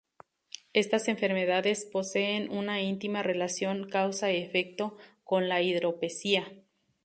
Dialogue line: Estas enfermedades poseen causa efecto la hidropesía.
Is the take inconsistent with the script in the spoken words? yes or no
yes